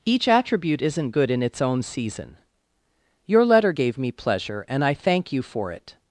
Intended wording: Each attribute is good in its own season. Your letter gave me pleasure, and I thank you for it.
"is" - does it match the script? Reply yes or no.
no